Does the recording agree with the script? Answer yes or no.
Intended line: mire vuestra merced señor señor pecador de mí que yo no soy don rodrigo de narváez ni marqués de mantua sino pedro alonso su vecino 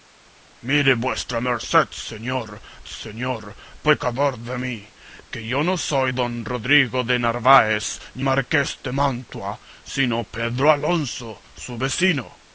yes